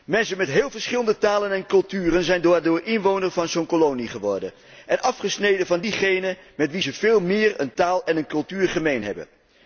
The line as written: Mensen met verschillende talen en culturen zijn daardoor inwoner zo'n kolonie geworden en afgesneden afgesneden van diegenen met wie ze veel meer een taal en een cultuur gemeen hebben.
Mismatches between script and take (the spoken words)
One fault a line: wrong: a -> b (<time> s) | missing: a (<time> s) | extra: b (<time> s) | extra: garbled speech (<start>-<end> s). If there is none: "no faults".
extra: heel (0.5 s)
extra: van (3.3 s)
missing: afgesneden (5.7 s)